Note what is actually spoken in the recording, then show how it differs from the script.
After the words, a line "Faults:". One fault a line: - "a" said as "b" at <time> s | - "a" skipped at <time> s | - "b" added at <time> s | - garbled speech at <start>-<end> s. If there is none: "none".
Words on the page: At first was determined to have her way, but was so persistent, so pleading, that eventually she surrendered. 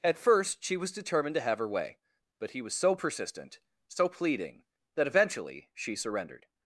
At first she was determined to have her way, but he was so persistent, so pleading, that eventually she surrendered.
Faults:
- "she" added at 0.6 s
- "he" added at 2.5 s